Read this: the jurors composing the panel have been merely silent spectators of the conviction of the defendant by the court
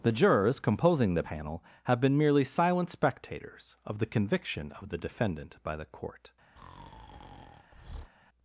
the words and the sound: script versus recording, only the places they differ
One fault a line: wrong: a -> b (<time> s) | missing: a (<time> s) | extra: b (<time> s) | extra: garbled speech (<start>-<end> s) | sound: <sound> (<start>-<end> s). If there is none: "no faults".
sound: breath (6.6-8.1 s)